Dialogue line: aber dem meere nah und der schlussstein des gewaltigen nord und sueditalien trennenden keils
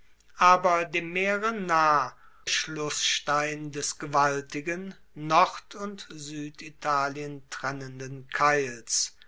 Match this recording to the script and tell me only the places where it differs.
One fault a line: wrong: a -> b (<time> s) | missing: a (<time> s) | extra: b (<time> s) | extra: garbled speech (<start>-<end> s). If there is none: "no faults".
missing: und der (2.1 s)